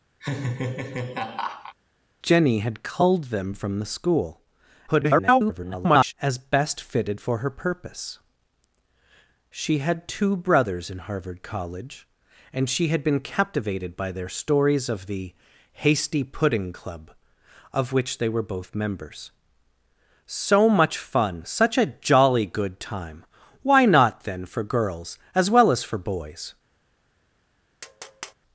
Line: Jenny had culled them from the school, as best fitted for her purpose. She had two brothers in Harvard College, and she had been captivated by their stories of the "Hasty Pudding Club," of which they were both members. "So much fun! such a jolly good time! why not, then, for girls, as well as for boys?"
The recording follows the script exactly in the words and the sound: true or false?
false